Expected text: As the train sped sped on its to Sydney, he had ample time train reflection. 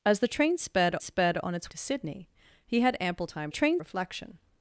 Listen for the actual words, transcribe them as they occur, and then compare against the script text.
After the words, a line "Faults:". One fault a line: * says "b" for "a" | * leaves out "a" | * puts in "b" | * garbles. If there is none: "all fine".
As the train sped sped on its to Sydney, he had ample time train reflection.
Faults:
all fine